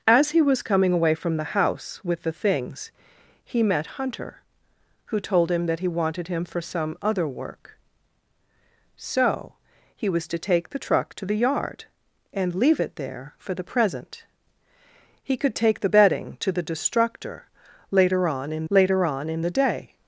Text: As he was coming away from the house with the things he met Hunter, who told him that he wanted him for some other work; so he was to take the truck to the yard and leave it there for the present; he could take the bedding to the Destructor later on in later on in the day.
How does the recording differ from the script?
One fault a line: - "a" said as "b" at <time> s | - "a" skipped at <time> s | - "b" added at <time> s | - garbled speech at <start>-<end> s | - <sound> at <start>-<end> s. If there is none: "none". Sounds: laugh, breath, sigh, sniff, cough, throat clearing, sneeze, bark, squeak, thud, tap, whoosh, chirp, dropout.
none